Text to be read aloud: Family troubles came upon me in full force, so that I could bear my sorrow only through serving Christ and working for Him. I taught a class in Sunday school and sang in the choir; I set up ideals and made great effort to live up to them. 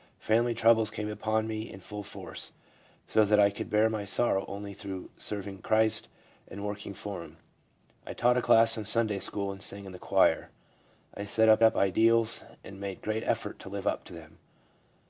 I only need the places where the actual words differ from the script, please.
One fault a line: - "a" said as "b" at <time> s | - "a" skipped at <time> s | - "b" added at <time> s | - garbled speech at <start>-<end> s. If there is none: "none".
- "up" added at 11.6 s